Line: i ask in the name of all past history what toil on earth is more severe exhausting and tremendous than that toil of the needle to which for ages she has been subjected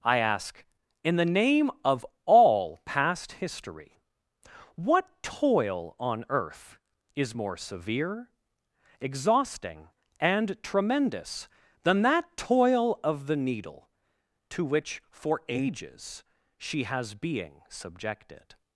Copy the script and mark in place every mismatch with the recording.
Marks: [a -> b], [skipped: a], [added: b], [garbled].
i ask in the name of all past history what toil on earth is more severe exhausting and tremendous than that toil of the needle to which for ages she has [been -> being] subjected